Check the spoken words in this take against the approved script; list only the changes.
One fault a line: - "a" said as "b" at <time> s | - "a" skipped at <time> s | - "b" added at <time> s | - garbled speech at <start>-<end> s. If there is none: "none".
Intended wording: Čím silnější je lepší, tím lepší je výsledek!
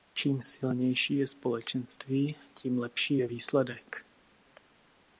- "lepší" said as "společenství" at 1.3 s